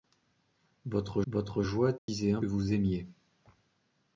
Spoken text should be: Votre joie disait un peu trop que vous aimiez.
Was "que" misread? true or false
true